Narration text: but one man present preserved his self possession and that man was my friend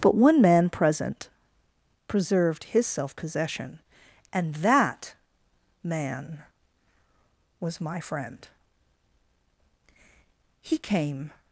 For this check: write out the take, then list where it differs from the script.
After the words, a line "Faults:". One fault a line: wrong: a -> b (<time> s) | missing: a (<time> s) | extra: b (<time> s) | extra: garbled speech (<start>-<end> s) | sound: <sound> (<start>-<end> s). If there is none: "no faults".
but one man present preserved his self possession and that man was my friend he came
Faults:
extra: he came (10.6 s)